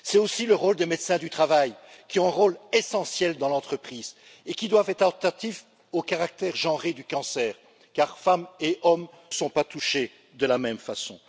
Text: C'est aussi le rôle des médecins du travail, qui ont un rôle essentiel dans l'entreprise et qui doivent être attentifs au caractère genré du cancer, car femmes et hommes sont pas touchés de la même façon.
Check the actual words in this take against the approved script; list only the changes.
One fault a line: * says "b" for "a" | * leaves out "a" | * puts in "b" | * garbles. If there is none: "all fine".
all fine